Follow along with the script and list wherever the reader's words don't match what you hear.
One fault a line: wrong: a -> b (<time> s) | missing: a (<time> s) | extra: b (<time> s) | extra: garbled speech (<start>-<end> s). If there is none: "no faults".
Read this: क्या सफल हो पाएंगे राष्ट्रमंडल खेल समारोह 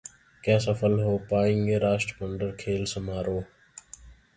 no faults